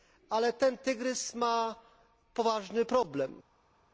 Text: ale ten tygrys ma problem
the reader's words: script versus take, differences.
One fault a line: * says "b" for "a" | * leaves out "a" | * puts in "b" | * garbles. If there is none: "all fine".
* puts in "poważny"